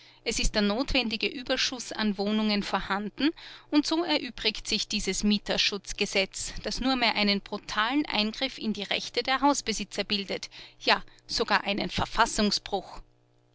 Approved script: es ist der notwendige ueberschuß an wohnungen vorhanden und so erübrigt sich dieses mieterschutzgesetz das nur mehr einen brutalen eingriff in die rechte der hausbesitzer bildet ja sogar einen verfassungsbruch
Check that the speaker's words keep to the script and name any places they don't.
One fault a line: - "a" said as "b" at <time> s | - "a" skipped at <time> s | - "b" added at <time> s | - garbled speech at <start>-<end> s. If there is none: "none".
none